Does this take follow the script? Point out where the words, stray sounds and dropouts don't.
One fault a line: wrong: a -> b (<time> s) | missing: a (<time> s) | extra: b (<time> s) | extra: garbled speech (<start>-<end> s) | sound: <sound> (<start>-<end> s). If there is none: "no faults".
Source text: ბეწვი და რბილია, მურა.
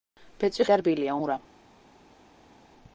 no faults